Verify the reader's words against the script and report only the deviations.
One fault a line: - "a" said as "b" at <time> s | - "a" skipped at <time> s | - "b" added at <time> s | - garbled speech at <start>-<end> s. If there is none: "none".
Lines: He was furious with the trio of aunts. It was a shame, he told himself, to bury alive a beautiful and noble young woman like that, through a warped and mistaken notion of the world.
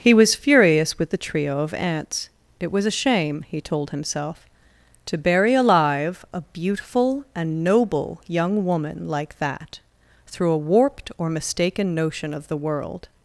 - "and" said as "or" at 11.2 s